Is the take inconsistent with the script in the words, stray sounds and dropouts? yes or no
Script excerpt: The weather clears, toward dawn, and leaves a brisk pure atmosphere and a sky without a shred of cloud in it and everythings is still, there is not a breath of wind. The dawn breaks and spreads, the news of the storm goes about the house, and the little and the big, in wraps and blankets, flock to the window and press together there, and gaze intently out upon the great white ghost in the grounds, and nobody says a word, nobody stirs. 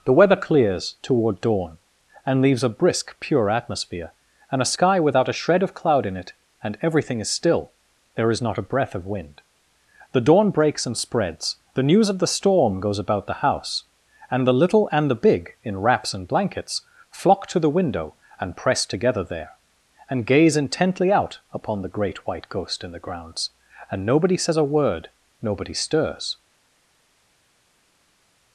yes